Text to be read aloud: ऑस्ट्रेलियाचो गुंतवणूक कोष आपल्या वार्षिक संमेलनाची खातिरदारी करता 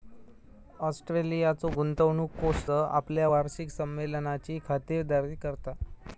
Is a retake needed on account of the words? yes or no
no